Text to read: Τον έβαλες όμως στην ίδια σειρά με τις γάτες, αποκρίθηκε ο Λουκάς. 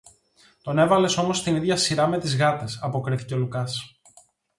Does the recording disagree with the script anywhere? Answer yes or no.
no